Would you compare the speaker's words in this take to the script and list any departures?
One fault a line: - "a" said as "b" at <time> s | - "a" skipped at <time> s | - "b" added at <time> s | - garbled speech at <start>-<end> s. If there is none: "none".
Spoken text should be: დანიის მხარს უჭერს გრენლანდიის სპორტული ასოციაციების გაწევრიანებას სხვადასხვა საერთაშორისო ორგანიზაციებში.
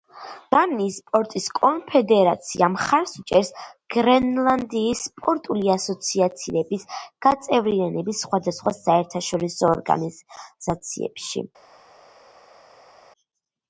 - "სპორტის კონფედერაცია" added at 1.0 s